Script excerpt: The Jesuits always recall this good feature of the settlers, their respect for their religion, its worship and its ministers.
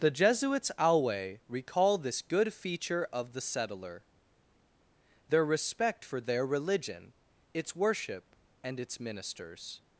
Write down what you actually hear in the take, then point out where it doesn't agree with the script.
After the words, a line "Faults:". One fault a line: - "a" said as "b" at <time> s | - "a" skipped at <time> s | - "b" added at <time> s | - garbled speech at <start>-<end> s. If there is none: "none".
The Jesuits alway recall this good feature of the settler, their respect for their religion, its worship and its ministers.
Faults:
- "always" said as "alway" at 0.8 s
- "settlers" said as "settler" at 3.4 s